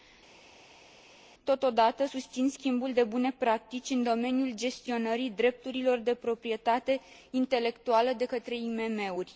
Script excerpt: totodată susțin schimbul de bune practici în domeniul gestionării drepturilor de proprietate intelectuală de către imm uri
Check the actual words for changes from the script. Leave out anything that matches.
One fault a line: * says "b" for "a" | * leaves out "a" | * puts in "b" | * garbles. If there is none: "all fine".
all fine